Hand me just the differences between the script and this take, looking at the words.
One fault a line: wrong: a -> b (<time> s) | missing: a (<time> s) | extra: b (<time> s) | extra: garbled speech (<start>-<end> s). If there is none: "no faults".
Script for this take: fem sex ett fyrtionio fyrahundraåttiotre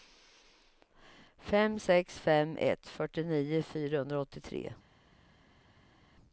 extra: fem (2.2 s)